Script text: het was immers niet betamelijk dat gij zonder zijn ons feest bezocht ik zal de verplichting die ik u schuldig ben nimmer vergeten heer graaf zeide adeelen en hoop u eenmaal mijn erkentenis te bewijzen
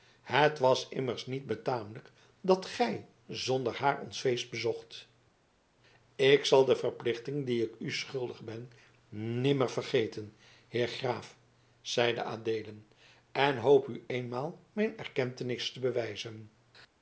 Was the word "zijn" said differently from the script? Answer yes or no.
yes